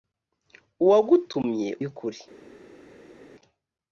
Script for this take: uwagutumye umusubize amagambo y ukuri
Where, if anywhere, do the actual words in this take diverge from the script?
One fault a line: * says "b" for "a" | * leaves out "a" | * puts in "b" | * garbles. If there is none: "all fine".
* leaves out "umusubize amagambo"